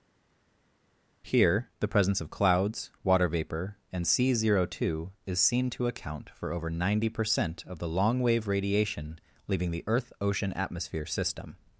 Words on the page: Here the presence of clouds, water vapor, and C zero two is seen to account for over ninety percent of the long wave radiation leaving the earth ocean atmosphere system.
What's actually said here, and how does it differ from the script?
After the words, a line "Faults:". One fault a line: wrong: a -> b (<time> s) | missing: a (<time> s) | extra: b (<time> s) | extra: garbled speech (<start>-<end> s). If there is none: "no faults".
Here the presence of clouds, water vapor, and C zero two is seen to account for over ninety percent of the long wave radiation leaving the earth ocean atmosphere system.
Faults:
no faults